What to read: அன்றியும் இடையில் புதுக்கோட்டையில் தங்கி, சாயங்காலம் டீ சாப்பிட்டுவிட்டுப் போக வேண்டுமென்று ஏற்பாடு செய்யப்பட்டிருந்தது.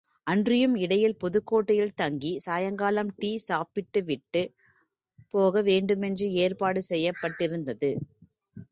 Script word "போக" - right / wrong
right